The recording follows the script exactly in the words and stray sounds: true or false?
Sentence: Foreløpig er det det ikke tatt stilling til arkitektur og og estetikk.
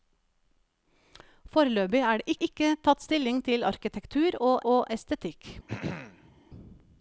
false